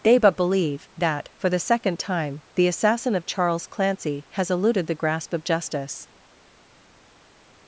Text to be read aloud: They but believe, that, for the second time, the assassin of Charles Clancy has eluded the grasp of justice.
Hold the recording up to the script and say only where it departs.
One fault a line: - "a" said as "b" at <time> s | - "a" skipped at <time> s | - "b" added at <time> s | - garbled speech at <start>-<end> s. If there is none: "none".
none